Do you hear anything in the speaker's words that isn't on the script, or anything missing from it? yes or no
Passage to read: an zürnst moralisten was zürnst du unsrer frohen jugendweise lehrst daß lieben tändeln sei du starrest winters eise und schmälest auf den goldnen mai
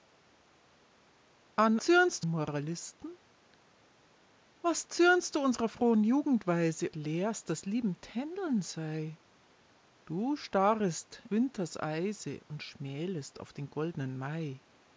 no